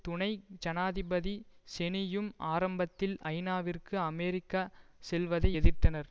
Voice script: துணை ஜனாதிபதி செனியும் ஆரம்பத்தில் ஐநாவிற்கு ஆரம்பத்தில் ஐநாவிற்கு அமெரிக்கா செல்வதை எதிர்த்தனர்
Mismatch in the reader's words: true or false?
true